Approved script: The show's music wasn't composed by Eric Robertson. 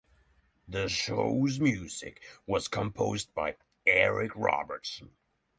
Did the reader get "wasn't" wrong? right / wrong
wrong